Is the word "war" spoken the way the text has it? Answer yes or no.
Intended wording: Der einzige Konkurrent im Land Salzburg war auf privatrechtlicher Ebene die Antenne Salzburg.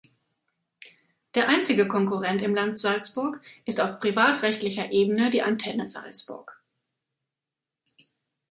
no